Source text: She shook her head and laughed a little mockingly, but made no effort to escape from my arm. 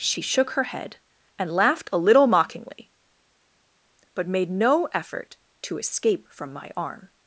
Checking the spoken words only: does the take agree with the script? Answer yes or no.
yes